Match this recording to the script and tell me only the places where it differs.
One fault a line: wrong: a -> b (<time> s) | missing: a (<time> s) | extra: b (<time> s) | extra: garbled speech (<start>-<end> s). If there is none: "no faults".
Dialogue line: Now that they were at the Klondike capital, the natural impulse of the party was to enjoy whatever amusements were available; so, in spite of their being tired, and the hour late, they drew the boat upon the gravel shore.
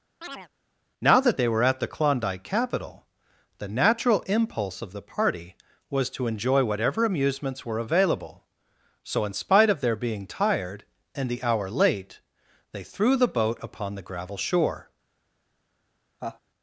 wrong: drew -> threw (12.8 s)